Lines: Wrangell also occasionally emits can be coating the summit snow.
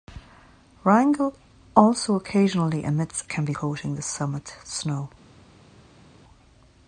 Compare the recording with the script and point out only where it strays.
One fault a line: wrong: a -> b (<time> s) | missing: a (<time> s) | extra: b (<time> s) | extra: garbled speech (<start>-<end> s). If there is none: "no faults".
no faults